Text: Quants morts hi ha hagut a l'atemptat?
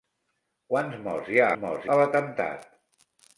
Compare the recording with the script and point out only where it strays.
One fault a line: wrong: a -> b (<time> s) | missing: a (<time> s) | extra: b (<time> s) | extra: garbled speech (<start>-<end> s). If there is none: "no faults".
wrong: hagut -> morts (1.6 s)